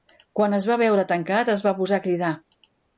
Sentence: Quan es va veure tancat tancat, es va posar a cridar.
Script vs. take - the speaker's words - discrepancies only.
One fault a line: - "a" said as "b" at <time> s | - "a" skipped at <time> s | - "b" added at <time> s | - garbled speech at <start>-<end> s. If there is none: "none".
- "tancat" skipped at 1.6 s